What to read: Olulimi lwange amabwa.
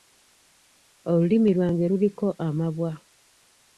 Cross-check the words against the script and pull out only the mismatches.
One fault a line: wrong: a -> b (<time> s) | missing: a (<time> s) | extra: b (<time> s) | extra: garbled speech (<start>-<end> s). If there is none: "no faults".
extra: luliko (1.9 s)